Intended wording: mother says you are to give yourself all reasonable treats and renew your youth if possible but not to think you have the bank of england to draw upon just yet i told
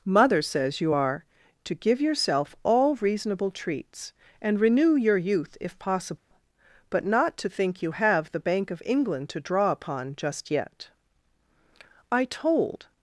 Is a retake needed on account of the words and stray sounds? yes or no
yes